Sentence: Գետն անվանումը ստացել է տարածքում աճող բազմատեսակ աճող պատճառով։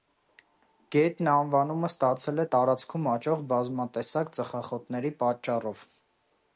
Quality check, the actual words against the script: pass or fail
fail